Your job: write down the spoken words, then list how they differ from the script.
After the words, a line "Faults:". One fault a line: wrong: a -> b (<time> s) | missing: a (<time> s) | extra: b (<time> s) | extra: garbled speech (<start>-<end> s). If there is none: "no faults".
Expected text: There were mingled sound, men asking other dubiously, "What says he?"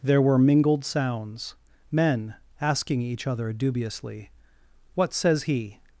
There were mingled sounds, men asking each other dubiously, "What says he?"
Faults:
wrong: sound -> sounds (0.8 s)
extra: each (3.0 s)